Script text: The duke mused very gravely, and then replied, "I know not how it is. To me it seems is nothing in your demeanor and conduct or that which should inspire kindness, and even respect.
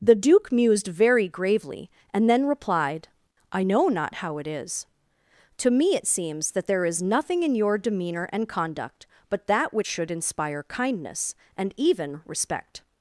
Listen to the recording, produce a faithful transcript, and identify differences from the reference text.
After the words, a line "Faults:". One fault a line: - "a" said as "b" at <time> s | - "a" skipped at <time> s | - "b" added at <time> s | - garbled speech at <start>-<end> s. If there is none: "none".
The duke mused very gravely, and then replied, "I know not how it is. To me it seems that there is nothing in your demeanor and conduct but that which should inspire kindness, and even respect.
Faults:
- "that there" added at 6.5 s
- "or" said as "but" at 9.3 s